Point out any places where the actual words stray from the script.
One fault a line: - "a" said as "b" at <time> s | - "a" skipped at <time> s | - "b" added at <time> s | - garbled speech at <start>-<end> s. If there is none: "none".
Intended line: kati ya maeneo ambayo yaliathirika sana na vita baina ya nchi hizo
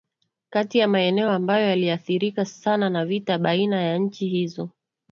none